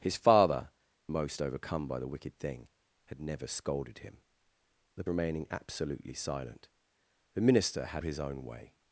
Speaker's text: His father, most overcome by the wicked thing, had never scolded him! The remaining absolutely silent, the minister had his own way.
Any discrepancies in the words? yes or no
no